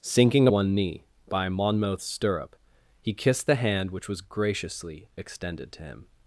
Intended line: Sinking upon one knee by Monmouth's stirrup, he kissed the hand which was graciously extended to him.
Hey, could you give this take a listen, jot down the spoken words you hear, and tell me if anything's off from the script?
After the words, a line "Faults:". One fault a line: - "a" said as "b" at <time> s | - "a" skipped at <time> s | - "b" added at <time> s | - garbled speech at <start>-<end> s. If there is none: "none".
Sinking one knee by Monmouth's stirrup, he kissed the hand which was graciously extended to him.
Faults:
- "upon" skipped at 0.5 s